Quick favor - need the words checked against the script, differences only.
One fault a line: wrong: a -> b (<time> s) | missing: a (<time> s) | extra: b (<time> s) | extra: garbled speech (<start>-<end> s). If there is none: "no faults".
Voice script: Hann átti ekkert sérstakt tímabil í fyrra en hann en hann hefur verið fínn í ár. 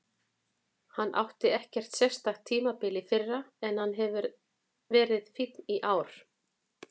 missing: en hann (4.0 s)